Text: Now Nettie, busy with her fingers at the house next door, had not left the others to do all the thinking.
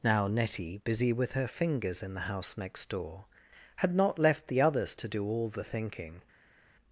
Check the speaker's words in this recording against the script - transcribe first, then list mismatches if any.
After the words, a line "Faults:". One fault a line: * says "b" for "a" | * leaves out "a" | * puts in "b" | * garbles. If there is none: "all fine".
Now Nettie, busy with her fingers in the house next door, had not left the others to do all the thinking.
Faults:
* says "in" for "at"